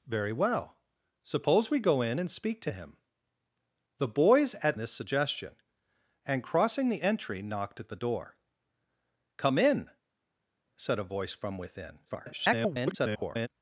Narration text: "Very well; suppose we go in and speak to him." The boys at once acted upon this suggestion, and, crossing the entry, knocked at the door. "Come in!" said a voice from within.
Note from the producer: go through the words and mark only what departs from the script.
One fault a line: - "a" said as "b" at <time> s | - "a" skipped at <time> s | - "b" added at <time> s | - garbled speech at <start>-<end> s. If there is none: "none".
- "once acted upon" skipped at 4.8 s
- garbled speech at 12.0-13.5 s